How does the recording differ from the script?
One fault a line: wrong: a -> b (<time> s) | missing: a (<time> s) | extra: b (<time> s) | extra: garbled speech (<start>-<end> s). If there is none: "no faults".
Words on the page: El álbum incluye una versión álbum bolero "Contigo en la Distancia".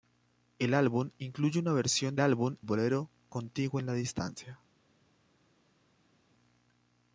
no faults